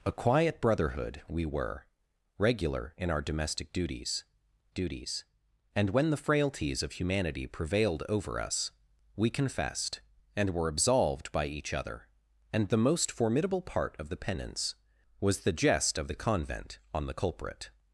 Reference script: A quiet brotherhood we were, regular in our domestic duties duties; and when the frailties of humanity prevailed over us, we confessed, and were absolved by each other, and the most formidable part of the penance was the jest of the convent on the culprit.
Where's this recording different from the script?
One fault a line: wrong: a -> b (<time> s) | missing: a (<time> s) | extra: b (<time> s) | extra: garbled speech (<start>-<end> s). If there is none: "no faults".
no faults